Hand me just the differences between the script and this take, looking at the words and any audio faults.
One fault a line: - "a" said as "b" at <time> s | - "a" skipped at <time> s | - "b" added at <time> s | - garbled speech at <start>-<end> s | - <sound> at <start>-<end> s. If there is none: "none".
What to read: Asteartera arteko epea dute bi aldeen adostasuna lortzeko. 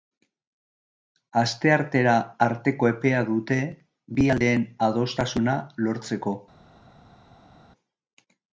none